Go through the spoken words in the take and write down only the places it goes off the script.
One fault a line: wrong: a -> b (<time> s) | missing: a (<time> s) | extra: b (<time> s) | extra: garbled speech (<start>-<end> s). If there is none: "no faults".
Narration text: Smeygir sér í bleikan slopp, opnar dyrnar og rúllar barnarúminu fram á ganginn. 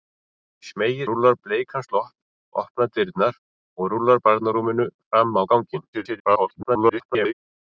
wrong: sér -> rúllar (1.1 s)
extra: garbled speech (5.9-7.3 s)